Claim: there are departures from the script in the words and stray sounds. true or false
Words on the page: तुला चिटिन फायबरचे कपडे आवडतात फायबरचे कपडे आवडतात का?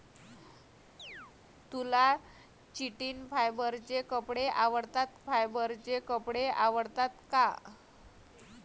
true